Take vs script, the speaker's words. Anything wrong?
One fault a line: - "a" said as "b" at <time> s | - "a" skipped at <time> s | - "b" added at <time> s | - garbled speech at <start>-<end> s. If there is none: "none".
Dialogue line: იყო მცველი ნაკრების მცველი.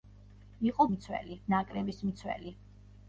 none